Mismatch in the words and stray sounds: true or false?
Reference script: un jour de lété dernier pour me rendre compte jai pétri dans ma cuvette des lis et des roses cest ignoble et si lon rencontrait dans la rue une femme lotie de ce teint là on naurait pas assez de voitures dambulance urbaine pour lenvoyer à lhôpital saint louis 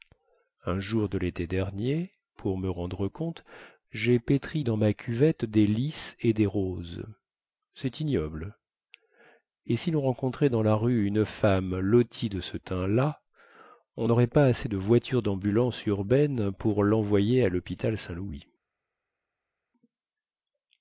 false